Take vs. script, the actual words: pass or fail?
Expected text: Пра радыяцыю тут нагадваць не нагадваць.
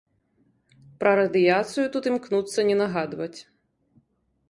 fail